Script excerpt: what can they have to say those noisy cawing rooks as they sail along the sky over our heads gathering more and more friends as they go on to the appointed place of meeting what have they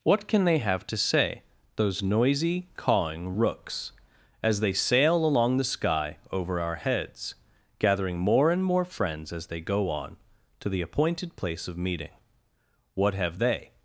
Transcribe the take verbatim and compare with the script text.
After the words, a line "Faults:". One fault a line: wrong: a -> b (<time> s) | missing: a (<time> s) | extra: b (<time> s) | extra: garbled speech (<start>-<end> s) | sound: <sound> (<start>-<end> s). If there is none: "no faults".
what can they have to say those noisy cawing rooks as they sail along the sky over our heads gathering more and more friends as they go on to the appointed place of meeting what have they
Faults:
no faults